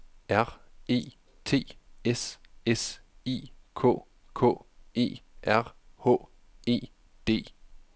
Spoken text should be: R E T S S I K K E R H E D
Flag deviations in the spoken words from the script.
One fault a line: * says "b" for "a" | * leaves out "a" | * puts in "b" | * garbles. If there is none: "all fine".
all fine